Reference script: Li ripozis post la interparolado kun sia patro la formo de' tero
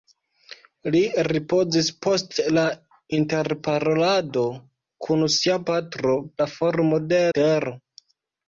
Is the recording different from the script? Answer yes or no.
no